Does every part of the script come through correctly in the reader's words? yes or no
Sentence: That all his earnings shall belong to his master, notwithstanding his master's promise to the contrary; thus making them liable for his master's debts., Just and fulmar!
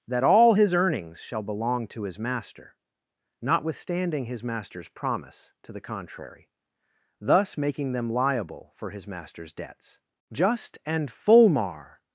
yes